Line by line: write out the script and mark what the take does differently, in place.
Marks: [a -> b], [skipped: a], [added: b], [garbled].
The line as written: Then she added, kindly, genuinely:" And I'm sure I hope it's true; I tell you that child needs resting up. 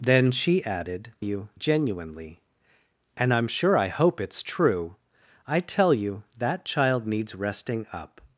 Then she added, [kindly, -> you] genuinely:" And I'm sure I hope it's true; I tell you that child needs resting up.